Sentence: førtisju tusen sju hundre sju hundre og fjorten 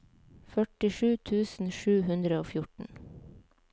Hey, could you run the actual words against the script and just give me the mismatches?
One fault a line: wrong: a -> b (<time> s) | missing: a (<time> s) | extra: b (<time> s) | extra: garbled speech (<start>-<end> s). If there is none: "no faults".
missing: sju hundre (2.4 s)